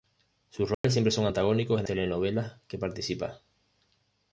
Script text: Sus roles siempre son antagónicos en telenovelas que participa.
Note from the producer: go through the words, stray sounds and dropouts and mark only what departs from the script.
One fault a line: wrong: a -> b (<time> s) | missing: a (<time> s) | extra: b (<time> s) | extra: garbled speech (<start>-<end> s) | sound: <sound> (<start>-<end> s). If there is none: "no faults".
sound: dropout (0.7-0.8 s)